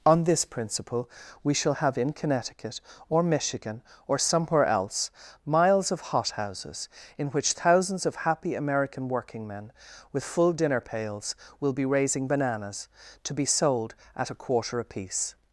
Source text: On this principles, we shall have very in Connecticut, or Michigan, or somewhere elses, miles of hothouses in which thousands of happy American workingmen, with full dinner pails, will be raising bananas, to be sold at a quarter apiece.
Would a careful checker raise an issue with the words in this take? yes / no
yes